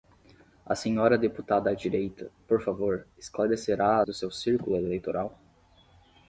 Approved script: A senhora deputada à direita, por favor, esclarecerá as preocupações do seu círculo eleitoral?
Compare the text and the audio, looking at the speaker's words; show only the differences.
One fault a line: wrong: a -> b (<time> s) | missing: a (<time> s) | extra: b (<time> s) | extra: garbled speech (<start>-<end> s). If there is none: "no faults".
missing: as preocupações (4.0 s)